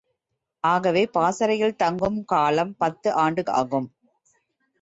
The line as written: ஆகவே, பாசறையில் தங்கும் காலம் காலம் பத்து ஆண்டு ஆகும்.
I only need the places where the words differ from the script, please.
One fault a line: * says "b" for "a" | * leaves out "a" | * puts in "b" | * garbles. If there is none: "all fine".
* leaves out "காலம்"